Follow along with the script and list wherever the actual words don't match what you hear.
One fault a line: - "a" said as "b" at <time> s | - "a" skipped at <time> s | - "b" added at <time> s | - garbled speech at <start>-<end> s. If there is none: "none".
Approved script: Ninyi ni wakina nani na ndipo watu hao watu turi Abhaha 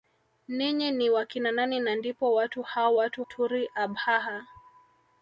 none